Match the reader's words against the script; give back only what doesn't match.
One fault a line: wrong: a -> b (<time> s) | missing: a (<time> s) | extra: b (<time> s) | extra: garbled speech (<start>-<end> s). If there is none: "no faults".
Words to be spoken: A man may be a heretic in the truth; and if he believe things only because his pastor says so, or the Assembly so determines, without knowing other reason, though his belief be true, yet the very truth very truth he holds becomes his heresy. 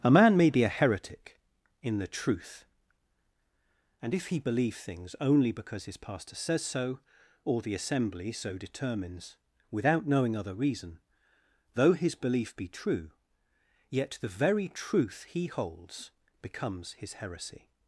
missing: very truth (15.2 s)